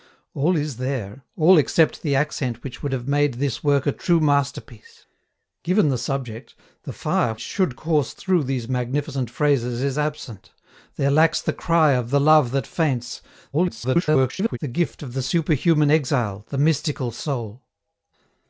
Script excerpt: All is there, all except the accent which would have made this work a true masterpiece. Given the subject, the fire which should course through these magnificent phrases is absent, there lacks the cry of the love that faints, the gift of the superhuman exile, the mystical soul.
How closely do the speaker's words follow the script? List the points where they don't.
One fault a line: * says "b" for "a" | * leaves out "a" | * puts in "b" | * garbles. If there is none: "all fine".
* leaves out "which"
* garbles